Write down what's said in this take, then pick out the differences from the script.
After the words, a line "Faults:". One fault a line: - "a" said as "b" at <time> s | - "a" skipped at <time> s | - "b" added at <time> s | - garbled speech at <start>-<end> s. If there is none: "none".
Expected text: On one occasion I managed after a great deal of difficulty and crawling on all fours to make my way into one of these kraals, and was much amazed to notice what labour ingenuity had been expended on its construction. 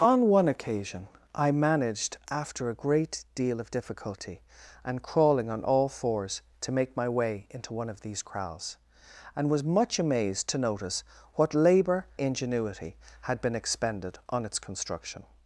On one occasion I managed after a great deal of difficulty and crawling on all fours to make my way into one of these kraals, and was much amazed to notice what labour ingenuity had been expended on its construction.
Faults:
none